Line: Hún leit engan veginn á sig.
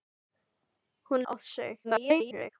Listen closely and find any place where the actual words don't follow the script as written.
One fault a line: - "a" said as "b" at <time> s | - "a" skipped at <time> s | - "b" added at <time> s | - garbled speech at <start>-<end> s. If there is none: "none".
- "leit engan veginn" skipped at 1.2 s
- garbled speech at 1.8-2.5 s